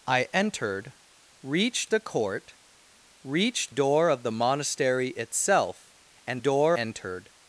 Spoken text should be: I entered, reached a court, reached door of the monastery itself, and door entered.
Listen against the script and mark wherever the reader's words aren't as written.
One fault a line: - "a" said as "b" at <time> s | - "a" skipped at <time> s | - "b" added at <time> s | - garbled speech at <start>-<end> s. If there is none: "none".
none